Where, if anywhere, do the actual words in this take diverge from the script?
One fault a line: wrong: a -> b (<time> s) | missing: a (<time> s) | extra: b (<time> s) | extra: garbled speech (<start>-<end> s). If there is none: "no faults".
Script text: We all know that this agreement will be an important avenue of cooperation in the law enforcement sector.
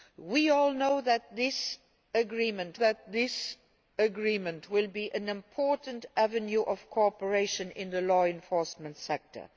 extra: that this agreement (2.7 s)